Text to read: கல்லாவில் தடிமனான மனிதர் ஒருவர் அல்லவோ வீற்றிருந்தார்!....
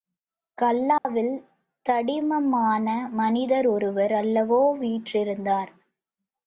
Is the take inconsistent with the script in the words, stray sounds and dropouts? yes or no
yes